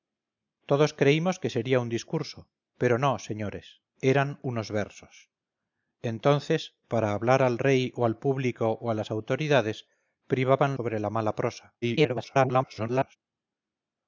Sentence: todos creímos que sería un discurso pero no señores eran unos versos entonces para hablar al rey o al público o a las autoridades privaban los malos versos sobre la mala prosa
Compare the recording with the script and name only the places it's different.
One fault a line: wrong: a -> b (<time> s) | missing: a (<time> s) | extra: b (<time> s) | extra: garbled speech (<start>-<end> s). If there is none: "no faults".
missing: los malos versos (10.8 s)
extra: garbled speech (11.8-13.2 s)